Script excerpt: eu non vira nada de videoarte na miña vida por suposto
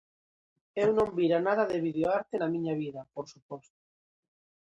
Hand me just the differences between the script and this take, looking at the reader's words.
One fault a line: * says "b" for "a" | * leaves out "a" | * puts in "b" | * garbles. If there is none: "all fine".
all fine